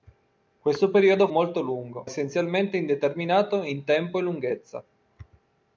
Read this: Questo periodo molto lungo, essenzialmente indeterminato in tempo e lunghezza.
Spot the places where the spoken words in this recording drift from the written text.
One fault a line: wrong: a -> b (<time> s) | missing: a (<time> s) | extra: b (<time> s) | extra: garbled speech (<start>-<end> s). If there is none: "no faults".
no faults